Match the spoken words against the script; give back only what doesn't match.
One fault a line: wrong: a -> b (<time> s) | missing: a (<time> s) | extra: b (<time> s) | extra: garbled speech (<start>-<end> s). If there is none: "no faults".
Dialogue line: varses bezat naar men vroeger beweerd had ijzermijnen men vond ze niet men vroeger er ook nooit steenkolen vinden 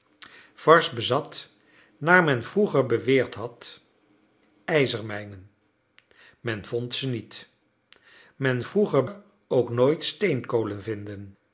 no faults